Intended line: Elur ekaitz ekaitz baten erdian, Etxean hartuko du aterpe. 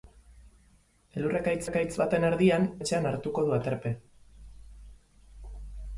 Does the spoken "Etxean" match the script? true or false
true